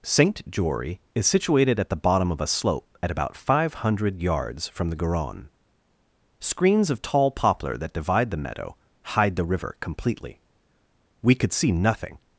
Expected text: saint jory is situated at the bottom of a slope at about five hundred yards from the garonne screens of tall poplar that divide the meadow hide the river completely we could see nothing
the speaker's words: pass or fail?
pass